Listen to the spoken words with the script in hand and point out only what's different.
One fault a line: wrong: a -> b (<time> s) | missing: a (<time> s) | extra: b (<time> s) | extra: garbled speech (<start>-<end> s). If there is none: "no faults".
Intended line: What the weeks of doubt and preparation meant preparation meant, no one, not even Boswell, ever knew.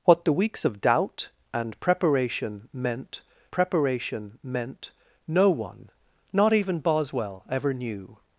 no faults